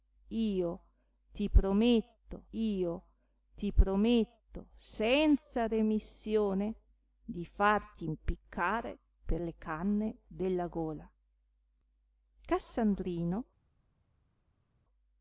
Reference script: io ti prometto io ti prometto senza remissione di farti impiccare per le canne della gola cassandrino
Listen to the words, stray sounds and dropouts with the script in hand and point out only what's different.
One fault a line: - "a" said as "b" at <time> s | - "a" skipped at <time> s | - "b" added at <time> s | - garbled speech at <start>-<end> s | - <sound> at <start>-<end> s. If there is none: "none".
none